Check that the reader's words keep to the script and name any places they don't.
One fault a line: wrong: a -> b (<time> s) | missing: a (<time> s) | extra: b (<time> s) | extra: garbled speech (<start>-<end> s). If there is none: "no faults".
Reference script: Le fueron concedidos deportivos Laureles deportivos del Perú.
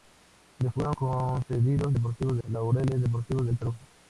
no faults